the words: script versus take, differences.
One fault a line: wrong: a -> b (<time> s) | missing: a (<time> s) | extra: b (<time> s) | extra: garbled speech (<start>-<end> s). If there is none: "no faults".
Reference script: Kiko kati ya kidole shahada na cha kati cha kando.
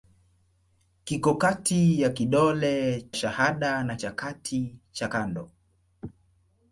no faults